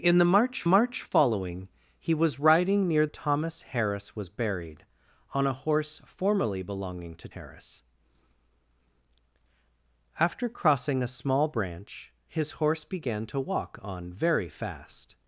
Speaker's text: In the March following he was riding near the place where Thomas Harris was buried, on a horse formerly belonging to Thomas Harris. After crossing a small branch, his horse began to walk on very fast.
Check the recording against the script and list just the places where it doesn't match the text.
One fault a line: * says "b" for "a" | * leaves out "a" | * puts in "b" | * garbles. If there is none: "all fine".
* puts in "March"
* leaves out "the place where"
* leaves out "Thomas"